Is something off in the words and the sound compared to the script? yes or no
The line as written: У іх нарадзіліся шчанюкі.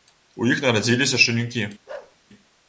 yes